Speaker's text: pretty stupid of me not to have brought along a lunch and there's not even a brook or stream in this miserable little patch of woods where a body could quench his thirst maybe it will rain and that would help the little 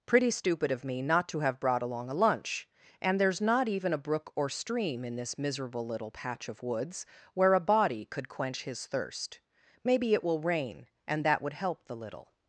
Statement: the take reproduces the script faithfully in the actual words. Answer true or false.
true